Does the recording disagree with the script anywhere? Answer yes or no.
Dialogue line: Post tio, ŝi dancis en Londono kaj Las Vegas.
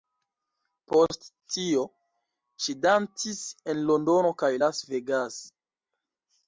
no